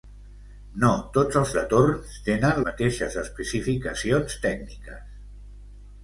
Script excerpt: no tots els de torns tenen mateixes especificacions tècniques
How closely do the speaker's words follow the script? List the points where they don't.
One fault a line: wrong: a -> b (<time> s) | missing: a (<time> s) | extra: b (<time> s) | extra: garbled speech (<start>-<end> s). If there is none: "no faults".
no faults